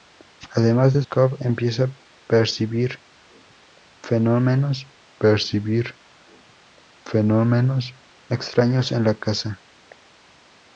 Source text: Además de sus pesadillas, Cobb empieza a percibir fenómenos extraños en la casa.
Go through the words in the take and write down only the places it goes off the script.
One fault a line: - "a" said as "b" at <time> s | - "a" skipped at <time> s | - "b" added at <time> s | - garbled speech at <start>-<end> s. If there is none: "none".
- "sus pesadillas" skipped at 1.0 s
- "percibir fenómenos" added at 5.2 s